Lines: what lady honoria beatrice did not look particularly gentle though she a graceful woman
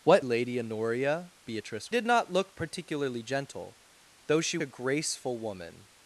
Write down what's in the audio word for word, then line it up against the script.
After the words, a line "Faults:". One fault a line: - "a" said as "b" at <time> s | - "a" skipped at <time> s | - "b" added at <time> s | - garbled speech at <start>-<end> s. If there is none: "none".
what lady honoria beatrice did not look particularly gentle though she a graceful woman
Faults:
none